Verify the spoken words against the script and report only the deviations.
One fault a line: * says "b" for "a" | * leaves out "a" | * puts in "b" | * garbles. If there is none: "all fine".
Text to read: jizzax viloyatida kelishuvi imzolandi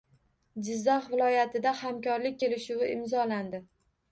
* puts in "hamkorlik"